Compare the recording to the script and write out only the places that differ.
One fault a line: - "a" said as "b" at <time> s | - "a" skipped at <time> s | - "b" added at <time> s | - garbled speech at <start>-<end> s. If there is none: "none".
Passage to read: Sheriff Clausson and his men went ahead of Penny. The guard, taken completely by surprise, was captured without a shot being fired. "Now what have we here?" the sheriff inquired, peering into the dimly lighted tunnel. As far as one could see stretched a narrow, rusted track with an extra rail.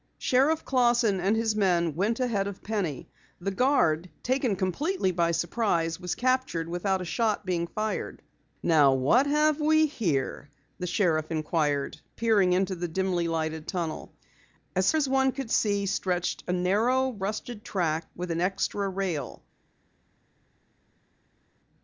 - "far" skipped at 14.9 s